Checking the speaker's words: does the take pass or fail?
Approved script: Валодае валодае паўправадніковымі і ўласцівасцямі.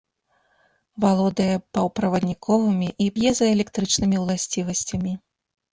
fail